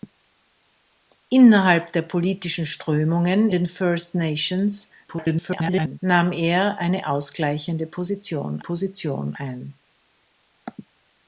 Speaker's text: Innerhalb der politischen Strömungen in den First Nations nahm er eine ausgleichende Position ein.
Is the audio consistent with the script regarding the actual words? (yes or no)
no